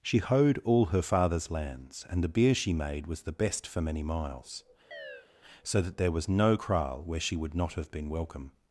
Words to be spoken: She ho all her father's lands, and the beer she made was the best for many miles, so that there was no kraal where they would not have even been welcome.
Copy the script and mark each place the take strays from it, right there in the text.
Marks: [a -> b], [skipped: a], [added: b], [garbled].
She [ho -> hoed] all her father's lands, and the beer she made was the best for many miles, so that there was no kraal where [they -> she] would not have [skipped: even] been welcome.